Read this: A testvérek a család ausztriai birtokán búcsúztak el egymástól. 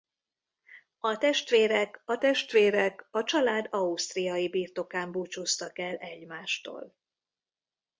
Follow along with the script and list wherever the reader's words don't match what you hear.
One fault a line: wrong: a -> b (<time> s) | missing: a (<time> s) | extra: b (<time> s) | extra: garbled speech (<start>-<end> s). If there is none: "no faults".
extra: testvérek a (2.2 s)